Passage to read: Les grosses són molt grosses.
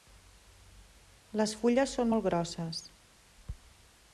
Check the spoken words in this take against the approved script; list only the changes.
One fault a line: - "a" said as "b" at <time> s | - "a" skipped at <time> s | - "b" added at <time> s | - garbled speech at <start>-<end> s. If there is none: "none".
- "grosses" said as "fulles" at 1.6 s